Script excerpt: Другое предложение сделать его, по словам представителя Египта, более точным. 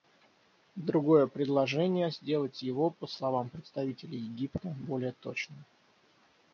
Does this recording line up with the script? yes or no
yes